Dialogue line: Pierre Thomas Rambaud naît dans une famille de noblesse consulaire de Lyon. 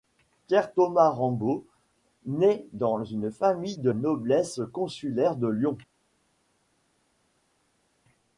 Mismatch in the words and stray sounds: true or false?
false